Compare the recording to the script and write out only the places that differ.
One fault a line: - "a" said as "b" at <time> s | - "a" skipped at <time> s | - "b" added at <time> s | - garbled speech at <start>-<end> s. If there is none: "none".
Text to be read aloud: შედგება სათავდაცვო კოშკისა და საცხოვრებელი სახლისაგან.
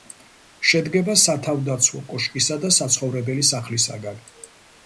none